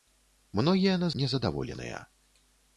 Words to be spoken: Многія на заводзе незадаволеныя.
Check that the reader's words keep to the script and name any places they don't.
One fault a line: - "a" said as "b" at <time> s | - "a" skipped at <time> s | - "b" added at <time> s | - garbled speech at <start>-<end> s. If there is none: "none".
- "заводзе" skipped at 1.1 s